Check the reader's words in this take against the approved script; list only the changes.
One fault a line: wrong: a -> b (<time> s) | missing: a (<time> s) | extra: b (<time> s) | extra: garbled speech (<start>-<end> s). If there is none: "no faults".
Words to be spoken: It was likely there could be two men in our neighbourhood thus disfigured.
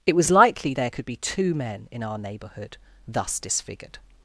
no faults